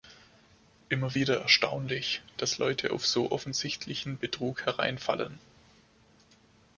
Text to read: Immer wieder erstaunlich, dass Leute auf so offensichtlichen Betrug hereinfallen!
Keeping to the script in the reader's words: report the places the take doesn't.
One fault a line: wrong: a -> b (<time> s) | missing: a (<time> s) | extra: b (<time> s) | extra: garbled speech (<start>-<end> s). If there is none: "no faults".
no faults